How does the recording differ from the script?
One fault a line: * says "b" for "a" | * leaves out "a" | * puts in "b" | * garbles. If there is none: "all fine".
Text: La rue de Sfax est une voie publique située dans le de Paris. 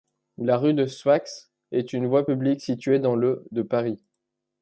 all fine